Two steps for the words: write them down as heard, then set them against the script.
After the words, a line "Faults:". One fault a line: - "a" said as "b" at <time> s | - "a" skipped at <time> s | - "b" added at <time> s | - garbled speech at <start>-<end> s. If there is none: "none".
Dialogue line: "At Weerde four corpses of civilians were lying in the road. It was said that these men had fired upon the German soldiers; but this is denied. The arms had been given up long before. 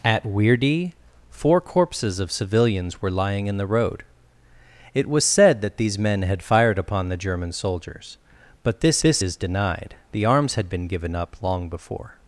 "At Weerde four corpses of civilians were lying in the road. It was said that these men had fired upon the German soldiers; but this this is denied. The arms had been given up long before.
Faults:
- "this" added at 9.0 s